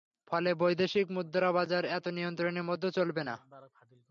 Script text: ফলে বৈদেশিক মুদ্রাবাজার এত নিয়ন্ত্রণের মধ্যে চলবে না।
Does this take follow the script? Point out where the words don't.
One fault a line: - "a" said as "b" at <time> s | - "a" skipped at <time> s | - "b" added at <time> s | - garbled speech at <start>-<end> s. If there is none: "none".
none